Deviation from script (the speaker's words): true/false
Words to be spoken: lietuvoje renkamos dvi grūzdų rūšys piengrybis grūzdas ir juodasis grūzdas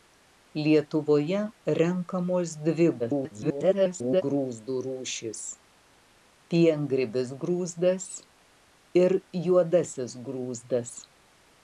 true